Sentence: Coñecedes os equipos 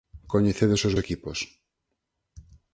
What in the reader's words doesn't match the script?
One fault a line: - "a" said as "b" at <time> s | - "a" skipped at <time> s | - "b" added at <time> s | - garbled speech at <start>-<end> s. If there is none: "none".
none